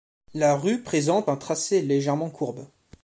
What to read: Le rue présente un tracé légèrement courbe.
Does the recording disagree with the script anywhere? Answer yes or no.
yes